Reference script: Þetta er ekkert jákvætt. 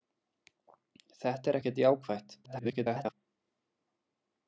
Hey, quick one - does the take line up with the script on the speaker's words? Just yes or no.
no